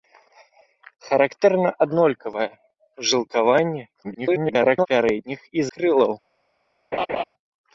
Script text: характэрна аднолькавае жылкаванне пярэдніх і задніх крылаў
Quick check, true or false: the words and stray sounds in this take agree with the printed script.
false